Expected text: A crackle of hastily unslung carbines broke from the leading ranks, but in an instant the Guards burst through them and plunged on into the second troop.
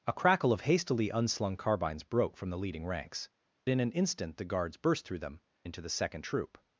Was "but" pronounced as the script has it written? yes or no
no